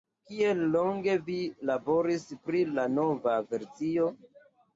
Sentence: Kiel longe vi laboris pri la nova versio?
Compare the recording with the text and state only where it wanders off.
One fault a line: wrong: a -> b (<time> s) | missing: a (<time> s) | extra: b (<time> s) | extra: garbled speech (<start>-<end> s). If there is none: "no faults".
no faults